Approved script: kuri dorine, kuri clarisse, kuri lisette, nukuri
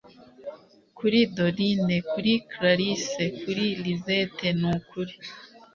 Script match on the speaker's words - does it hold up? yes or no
yes